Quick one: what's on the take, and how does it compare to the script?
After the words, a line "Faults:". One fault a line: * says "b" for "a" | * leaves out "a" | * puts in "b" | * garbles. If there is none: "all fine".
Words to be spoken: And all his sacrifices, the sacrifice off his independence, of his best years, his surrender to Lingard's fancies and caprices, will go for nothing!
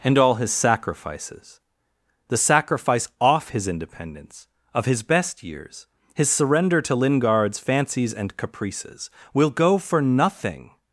And all his sacrifices, the sacrifice off his independence, of his best years, his surrender to Lingard's fancies and caprices, will go for nothing!
Faults:
all fine